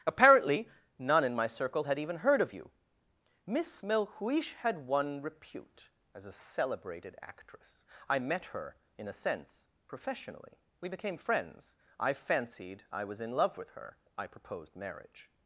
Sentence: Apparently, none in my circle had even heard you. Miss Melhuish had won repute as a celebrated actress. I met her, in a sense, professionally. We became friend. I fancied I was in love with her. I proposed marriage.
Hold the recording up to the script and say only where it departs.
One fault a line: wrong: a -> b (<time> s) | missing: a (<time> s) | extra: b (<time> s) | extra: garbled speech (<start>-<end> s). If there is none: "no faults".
extra: of (2.4 s)
wrong: friend -> friends (11.2 s)